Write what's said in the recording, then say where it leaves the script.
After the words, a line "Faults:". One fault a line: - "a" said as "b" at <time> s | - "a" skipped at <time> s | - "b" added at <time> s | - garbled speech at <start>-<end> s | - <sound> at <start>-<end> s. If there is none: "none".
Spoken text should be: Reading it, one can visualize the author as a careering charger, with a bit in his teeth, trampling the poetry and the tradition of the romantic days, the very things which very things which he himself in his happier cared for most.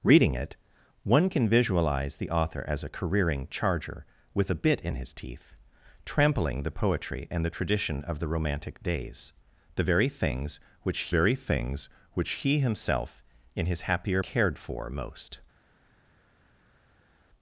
Reading it, one can visualize the author as a careering charger, with a bit in his teeth, trampling the poetry and the tradition of the romantic days, the very things which very things which he himself in his happier cared for most.
Faults:
none